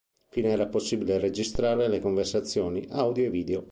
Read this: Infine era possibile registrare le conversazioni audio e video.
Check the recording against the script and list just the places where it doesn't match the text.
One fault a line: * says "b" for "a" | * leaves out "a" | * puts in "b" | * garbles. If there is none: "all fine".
all fine